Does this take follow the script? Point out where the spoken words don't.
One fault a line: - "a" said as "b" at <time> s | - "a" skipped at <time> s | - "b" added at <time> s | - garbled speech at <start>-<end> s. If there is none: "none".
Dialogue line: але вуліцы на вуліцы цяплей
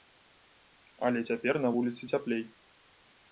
- "вуліцы" said as "цяпер" at 1.3 s